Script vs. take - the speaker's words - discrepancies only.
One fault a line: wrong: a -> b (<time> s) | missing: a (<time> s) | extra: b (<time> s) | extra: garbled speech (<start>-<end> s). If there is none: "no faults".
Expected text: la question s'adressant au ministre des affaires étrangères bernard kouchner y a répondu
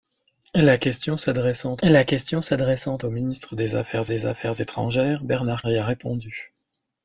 extra: la question s'adressant (1.8 s)
extra: des affaires (4.1 s)
missing: kouchner (5.6 s)